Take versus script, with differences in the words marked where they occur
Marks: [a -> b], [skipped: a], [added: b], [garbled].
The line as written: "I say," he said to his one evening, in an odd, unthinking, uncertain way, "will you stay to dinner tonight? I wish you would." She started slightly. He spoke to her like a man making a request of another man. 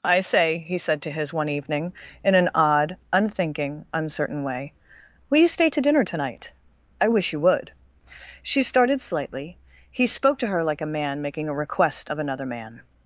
"I say," he said to his one evening, in an odd, unthinking, uncertain way, "will you stay to dinner tonight? I wish you would." She started slightly. He spoke to her like a man making a request of another man.